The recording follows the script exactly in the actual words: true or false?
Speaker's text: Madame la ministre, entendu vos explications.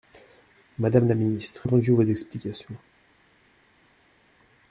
true